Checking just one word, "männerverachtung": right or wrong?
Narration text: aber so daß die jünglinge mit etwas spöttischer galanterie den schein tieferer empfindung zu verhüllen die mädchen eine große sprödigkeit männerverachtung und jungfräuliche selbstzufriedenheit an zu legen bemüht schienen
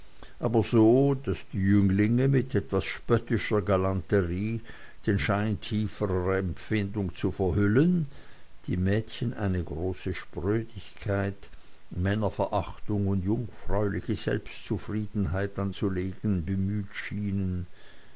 right